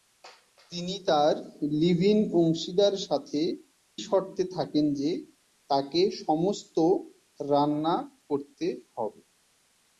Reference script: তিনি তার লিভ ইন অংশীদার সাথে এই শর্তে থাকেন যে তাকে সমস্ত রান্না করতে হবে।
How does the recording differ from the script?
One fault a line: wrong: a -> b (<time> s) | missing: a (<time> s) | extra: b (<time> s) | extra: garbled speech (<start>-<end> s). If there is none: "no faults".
missing: এই (3.4 s)